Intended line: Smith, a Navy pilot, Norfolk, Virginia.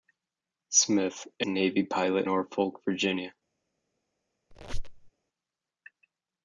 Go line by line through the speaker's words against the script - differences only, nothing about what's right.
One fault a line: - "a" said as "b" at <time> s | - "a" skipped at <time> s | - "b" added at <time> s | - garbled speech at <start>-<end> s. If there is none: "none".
none